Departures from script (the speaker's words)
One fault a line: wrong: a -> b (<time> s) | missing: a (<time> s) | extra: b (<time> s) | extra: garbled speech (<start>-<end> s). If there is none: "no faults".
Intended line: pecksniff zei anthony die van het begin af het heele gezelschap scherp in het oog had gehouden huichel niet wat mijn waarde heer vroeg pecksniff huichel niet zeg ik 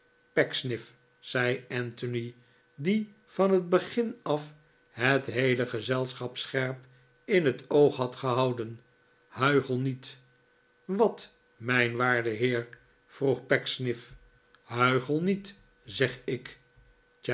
no faults